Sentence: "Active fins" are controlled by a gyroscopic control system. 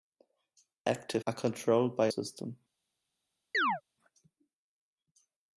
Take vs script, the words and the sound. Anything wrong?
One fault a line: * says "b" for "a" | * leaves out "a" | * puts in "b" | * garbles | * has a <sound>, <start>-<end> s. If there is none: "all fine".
* leaves out "fins"
* leaves out "a gyroscopic control"
* has a chirp, 3.5-3.8 s